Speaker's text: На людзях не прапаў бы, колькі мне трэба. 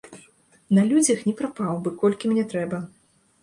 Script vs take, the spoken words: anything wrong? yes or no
no